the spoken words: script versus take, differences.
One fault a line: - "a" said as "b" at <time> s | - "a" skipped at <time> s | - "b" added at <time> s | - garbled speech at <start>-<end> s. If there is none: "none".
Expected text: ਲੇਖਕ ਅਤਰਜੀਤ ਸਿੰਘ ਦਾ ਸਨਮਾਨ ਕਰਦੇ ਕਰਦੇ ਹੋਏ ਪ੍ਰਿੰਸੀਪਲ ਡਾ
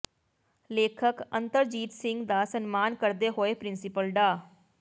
- "ਕਰਦੇ" skipped at 3.3 s